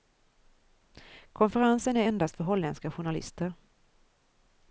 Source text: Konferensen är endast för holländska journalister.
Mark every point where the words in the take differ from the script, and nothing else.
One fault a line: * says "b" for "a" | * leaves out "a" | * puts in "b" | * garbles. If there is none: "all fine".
all fine